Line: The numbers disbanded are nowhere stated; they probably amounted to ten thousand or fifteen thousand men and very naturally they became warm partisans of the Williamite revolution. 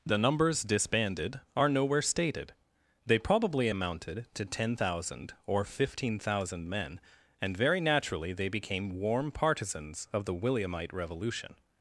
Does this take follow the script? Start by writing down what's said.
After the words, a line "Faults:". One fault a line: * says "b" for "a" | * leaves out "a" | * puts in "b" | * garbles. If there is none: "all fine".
The numbers disbanded are nowhere stated; they probably amounted to ten thousand or fifteen thousand men and very naturally they became warm partisans of the Williamite revolution.
Faults:
all fine